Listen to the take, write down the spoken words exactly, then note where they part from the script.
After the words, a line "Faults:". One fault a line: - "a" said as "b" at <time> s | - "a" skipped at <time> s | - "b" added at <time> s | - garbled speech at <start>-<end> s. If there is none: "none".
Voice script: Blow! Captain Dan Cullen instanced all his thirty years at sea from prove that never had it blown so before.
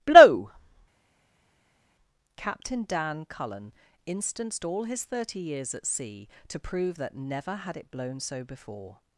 Blow! Captain Dan Cullen instanced all his thirty years at sea to prove that never had it blown so before.
Faults:
- "from" said as "to" at 6.5 s